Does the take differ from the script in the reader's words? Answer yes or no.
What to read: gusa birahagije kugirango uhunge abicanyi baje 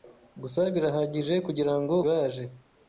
yes